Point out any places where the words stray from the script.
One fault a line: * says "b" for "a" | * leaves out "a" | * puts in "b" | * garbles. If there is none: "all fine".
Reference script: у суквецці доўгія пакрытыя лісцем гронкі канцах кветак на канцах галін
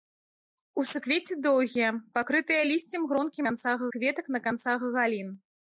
all fine